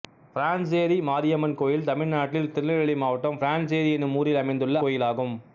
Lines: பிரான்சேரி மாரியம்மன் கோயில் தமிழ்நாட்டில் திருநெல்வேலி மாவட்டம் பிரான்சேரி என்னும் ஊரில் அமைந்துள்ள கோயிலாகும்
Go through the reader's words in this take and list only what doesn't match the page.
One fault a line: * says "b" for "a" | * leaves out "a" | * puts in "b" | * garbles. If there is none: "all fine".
all fine